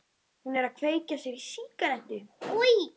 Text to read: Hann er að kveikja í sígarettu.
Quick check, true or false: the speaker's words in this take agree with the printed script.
false